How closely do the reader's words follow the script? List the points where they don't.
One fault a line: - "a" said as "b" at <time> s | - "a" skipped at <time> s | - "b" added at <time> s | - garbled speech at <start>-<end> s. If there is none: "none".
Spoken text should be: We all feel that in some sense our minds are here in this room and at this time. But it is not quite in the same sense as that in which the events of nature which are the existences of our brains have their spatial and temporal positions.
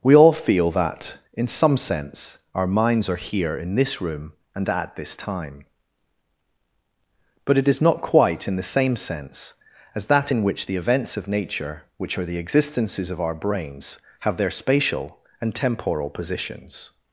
none